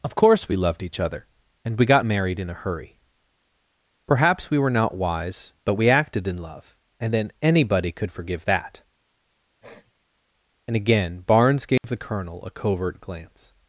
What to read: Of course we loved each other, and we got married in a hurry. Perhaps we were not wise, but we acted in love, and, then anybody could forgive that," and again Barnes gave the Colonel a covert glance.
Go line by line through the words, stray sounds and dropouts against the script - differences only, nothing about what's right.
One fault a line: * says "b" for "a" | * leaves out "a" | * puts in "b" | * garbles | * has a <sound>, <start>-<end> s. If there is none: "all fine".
* has a sniff, 9.6-9.9 s
* has a dropout, 11.8-11.8 s